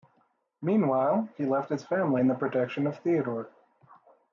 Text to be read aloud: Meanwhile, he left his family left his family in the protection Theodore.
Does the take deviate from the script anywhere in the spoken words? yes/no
yes